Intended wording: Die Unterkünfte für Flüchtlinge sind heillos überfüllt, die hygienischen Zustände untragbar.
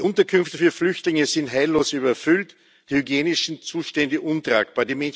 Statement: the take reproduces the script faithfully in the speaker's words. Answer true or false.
true